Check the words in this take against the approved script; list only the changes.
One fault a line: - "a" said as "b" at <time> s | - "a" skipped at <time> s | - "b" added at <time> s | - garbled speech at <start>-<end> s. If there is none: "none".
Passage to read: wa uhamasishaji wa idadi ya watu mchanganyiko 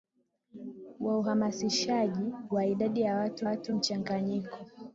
- "watu" added at 3.4 s